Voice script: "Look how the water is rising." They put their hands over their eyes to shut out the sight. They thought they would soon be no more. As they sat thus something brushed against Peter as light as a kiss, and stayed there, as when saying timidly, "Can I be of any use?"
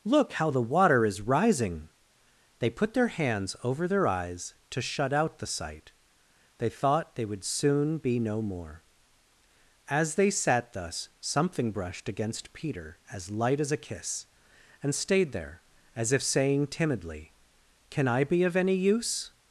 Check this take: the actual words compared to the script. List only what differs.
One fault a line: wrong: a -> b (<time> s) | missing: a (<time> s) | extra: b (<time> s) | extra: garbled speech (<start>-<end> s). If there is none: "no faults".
wrong: when -> if (16.1 s)